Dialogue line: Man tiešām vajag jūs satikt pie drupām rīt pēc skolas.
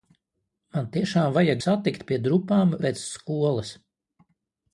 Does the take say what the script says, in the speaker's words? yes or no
no